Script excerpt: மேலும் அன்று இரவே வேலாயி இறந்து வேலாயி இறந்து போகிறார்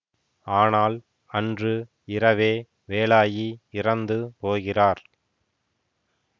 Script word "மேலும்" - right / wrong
wrong